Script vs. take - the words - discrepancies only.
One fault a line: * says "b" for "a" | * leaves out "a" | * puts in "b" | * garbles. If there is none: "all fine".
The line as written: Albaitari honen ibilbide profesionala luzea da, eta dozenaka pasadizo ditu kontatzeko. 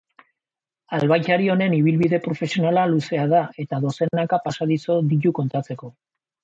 all fine